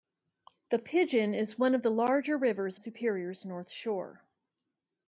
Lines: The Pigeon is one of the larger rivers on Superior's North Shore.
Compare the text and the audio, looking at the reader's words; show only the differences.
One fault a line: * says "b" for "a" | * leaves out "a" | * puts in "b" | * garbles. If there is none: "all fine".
* leaves out "on"